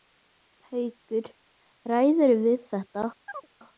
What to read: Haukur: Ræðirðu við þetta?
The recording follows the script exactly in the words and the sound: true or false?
false